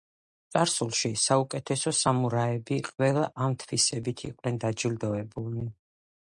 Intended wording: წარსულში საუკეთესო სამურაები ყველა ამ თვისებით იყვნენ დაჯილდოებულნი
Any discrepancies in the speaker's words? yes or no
no